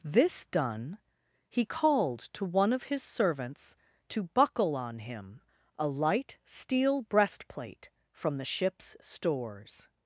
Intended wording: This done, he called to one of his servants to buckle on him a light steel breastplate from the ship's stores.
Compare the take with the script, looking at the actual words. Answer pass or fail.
pass